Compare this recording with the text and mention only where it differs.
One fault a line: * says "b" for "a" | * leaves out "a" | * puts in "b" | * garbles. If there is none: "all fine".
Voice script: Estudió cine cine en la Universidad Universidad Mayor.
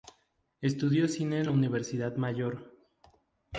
* leaves out "cine"
* leaves out "Universidad"